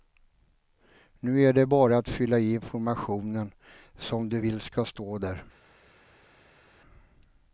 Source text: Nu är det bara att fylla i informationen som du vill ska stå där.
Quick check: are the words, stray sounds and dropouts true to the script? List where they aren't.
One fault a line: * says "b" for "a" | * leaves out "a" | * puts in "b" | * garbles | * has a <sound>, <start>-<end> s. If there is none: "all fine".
all fine